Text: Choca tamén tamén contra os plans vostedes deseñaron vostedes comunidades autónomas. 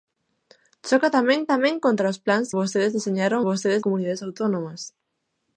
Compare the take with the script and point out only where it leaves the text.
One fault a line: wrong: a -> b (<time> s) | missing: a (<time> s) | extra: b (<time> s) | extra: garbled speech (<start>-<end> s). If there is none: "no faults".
no faults